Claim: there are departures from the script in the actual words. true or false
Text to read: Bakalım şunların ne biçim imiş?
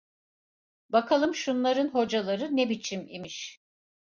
true